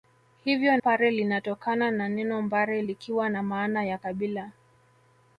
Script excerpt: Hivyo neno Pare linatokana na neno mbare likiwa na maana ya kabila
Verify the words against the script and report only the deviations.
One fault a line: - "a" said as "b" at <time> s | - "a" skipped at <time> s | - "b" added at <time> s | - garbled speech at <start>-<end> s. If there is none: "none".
- "neno" skipped at 0.8 s